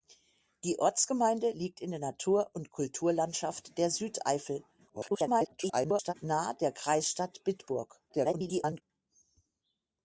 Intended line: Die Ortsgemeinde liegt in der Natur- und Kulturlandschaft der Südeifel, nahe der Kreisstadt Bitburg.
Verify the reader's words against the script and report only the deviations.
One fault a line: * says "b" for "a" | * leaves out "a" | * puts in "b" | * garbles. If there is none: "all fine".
* garbles
* garbles